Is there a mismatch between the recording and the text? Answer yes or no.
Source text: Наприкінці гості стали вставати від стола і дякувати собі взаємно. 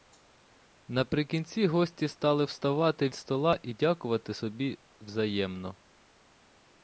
yes